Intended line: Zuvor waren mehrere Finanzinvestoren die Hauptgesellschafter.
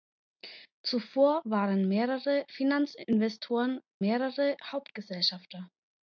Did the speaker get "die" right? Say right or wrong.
wrong